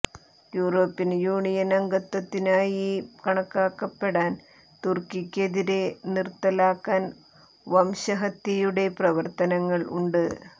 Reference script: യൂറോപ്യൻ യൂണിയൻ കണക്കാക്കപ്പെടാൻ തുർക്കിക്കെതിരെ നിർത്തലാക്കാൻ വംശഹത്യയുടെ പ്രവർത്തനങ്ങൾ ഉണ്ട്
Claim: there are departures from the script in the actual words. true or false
true